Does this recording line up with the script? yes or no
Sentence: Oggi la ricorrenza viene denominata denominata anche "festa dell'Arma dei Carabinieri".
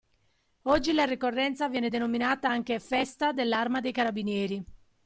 no